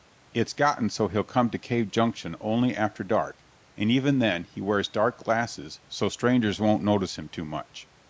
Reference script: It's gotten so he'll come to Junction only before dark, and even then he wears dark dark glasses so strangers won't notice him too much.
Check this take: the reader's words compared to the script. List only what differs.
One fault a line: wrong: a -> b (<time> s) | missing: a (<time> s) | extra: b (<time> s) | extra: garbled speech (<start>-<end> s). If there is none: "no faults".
extra: Cave (1.6 s)
wrong: before -> after (2.8 s)
missing: dark (5.2 s)